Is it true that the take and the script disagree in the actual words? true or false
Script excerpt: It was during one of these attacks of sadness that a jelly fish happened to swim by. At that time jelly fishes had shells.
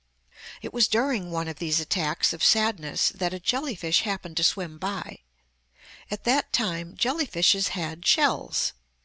false